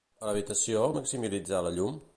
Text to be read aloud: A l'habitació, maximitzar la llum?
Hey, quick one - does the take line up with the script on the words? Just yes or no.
yes